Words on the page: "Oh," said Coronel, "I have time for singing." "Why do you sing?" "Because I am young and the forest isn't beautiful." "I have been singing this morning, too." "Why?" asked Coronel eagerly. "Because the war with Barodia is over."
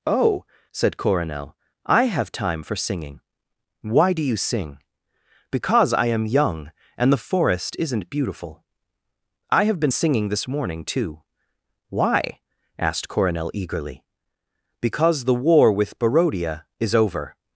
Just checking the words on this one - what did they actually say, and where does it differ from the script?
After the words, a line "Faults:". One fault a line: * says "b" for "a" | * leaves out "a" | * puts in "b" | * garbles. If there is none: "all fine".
"Oh," said Coronel, "I have time for singing." "Why do you sing?" "Because I am young and the forest isn't beautiful." "I have been singing this morning, too." "Why?" asked Coronel eagerly. "Because the war with Barodia is over."
Faults:
all fine